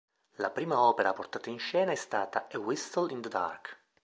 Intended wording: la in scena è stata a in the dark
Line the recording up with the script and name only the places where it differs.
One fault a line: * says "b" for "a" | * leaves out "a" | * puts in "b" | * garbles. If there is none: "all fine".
* puts in "prima opera portata"
* puts in "whistle"